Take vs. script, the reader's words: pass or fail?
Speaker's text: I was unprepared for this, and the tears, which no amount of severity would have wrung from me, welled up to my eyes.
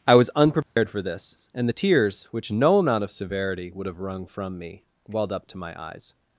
pass